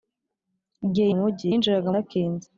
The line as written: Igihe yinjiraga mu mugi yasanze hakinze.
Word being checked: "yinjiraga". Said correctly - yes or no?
no